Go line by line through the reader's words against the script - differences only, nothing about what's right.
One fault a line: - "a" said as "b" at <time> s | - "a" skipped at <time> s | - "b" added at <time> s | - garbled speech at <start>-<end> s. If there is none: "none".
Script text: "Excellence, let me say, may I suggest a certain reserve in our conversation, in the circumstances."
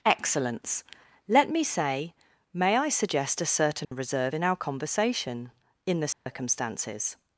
none